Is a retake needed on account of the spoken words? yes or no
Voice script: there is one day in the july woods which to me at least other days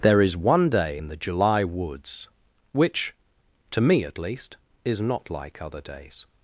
yes